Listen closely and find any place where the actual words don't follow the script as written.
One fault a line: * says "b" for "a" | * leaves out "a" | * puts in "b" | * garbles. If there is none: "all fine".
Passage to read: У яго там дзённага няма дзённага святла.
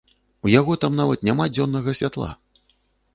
* says "нават" for "дзённага"